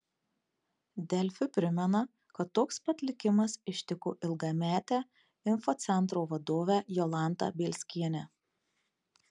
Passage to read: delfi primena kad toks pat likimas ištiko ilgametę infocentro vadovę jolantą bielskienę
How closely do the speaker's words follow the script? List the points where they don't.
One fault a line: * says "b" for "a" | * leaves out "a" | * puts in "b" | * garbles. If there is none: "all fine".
all fine